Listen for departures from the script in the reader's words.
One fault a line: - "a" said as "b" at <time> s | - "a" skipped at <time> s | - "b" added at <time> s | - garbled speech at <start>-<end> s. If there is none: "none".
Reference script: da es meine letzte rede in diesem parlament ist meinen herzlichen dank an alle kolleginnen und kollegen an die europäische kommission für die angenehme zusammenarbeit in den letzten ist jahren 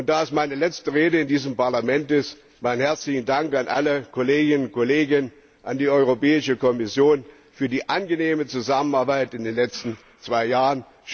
- "ist" said as "zwei" at 10.2 s